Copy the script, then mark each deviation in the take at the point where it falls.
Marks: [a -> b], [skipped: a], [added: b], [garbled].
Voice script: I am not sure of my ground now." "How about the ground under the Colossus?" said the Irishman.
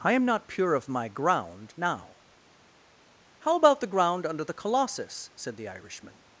I am not [sure -> pure] of my ground now." "How about the ground under the Colossus?" said the Irishman.